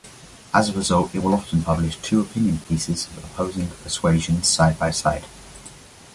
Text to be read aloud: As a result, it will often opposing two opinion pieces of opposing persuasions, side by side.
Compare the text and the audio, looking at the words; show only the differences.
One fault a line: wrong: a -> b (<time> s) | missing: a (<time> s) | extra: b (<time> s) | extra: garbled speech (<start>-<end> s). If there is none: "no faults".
wrong: opposing -> publish (1.6 s)